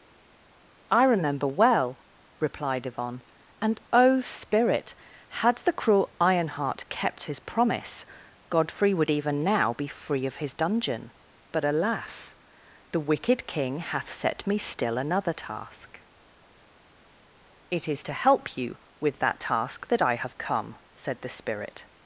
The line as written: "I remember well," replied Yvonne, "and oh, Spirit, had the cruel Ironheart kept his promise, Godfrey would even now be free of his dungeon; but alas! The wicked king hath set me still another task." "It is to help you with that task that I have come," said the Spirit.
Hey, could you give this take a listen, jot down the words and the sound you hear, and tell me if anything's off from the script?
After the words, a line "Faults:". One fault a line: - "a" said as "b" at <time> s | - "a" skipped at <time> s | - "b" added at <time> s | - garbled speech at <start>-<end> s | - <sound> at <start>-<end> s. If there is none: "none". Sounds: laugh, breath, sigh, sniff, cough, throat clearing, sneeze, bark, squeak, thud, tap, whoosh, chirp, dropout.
"I remember well," replied Yvonne, "and oh, Spirit, had the cruel Ironheart kept his promise, Godfrey would even now be free of his dungeon; but alas! The wicked king hath set me still another task." "It is to help you with that task that I have come," said the Spirit.
Faults:
none